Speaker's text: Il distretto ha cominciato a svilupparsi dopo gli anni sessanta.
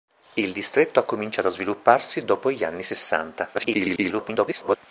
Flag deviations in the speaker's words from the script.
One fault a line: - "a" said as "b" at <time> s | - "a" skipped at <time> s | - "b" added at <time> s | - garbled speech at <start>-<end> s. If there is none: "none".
- garbled speech at 3.5-4.8 s